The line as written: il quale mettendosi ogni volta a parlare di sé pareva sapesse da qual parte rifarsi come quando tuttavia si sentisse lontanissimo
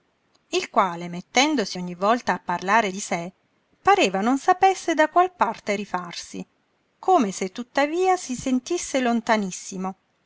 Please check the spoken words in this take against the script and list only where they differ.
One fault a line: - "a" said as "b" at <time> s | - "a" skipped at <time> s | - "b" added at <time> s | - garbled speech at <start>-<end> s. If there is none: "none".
- "non" added at 4.2 s
- "quando" said as "se" at 7.3 s